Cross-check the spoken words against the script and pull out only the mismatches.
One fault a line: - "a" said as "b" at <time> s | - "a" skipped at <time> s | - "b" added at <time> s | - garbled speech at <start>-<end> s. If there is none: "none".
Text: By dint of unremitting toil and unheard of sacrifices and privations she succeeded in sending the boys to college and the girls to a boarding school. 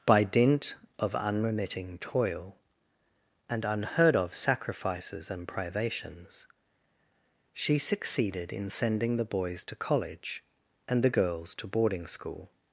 - "a" skipped at 11.7 s